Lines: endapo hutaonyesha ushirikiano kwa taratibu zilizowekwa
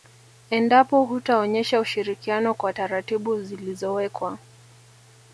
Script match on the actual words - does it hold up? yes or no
yes